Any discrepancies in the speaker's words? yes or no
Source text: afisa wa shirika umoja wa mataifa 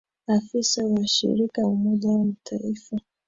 no